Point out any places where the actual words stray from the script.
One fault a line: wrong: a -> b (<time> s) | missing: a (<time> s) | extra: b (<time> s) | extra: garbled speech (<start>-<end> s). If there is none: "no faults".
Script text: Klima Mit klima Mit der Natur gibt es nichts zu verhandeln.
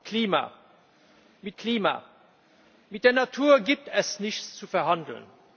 no faults